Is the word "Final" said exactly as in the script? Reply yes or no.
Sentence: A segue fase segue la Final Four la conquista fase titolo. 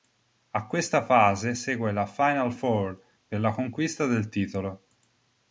yes